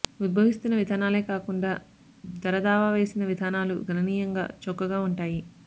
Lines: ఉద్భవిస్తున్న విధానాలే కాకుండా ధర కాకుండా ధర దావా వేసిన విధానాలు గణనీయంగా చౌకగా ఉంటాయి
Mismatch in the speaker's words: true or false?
true